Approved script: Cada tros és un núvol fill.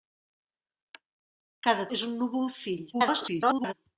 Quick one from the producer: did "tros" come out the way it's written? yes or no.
no